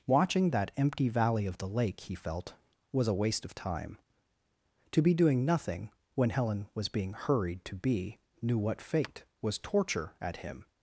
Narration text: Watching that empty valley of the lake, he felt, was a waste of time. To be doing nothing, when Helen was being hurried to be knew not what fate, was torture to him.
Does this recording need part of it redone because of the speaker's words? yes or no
yes